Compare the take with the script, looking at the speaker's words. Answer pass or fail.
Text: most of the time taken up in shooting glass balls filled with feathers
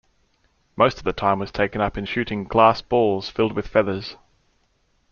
fail